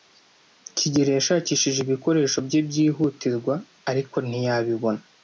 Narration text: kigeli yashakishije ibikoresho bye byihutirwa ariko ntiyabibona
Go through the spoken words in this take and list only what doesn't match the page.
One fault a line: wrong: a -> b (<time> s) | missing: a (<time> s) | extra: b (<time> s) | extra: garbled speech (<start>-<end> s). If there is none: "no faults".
no faults